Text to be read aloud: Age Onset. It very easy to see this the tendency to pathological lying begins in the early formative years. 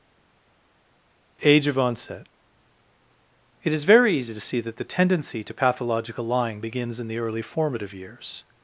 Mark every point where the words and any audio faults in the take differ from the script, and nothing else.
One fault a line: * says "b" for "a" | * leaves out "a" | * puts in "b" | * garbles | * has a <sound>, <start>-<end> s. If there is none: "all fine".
* puts in "of"
* puts in "is"
* says "that" for "this"